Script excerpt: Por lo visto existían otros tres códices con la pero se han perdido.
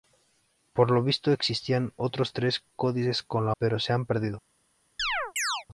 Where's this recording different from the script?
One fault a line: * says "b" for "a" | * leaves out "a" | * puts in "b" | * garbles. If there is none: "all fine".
all fine